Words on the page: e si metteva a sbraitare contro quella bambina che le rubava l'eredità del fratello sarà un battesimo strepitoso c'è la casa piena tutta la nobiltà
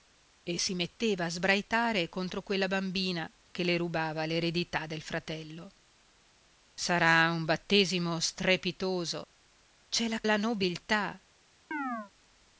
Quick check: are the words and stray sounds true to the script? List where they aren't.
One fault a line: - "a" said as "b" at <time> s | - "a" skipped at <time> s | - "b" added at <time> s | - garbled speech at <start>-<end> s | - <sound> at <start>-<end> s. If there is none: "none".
- "casa piena tutta" skipped at 10.2 s
- chirp at 11.7-12.1 s